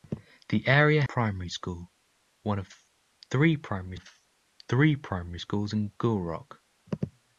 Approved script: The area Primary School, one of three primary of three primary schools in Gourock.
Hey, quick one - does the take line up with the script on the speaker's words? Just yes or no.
yes